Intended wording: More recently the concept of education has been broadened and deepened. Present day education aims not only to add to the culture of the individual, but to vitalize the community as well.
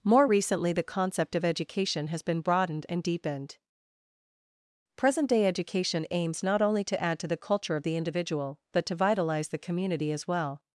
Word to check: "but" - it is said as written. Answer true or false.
true